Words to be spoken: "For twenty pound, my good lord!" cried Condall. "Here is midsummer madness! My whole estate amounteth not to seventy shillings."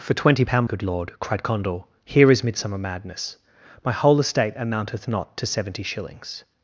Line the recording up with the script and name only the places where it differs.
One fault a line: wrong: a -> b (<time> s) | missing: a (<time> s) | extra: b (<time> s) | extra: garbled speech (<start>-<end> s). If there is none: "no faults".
missing: my (0.6 s)